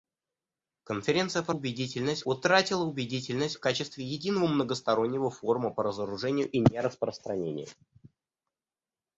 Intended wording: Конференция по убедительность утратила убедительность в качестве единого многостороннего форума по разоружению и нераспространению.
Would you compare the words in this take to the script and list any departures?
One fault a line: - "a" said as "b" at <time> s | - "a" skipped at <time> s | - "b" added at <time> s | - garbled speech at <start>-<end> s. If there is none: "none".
none